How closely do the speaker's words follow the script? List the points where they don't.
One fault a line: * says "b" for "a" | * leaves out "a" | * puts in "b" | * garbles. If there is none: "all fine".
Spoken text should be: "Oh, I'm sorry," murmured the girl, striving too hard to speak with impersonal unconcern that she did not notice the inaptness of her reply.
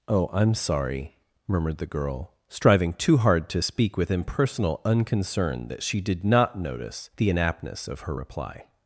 all fine